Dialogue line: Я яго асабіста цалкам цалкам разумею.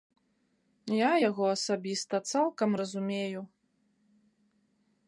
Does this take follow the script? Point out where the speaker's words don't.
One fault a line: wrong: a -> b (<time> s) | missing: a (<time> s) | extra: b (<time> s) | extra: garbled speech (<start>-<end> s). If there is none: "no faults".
missing: цалкам (2.7 s)